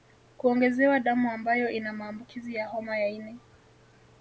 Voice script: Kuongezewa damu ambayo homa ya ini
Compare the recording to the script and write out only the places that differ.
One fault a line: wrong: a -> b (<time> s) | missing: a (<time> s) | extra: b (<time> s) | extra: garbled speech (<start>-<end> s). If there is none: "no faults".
extra: ina maambukizi ya (1.7 s)